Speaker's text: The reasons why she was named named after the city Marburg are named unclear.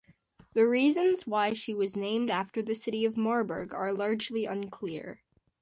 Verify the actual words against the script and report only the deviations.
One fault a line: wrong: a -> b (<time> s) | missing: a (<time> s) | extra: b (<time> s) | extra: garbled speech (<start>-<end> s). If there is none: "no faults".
missing: named (2.3 s)
extra: of (3.0 s)
wrong: named -> largely (3.9 s)